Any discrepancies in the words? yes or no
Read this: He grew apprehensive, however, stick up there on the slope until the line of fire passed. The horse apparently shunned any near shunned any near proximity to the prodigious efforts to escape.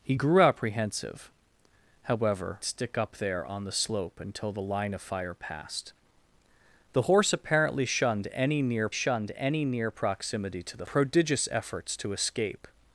no